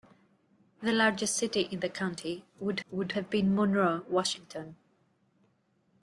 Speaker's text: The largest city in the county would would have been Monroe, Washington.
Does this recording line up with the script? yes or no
yes